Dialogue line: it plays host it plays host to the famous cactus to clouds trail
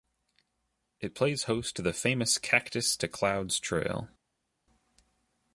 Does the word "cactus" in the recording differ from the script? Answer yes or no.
no